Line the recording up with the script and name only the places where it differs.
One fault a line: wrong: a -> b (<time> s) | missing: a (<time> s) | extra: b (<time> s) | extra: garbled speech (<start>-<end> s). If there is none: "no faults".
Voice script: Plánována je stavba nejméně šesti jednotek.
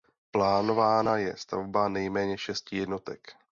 no faults